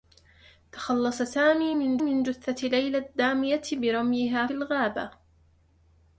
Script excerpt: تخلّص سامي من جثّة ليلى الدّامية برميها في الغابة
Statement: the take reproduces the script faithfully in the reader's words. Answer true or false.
false